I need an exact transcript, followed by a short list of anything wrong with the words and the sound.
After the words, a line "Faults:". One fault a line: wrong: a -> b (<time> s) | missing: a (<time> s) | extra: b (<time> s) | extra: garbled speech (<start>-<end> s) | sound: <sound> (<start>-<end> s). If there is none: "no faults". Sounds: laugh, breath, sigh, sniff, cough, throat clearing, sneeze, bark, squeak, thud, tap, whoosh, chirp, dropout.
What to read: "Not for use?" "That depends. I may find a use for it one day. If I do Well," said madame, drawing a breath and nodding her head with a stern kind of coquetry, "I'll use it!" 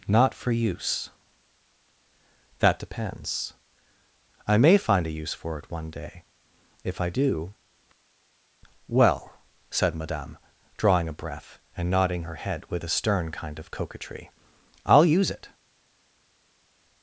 "Not for use?" "That depends. I may find a use for it one day. If I do Well," said madame, drawing a breath and nodding her head with a stern kind of coquetry, "I'll use it!"
Faults:
no faults